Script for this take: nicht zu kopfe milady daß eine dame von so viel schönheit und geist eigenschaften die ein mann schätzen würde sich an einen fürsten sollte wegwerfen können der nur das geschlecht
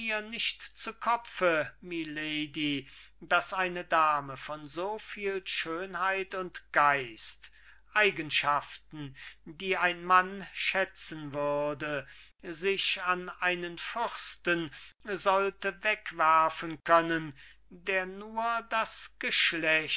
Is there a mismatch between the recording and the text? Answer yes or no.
no